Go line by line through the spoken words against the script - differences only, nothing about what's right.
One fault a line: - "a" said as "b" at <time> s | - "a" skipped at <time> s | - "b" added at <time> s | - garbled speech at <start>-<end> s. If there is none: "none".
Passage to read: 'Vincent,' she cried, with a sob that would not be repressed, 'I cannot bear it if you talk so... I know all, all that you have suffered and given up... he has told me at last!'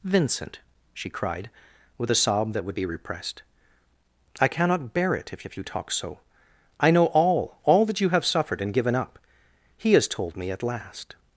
- "not" skipped at 2.8 s
- "if" added at 5.4 s